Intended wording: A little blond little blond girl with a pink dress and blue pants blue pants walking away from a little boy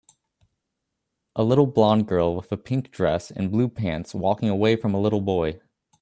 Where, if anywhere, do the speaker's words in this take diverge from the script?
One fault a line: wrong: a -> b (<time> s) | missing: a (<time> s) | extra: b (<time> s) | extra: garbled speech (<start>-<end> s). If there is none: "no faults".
missing: little blond (2.1 s)
missing: blue pants (4.1 s)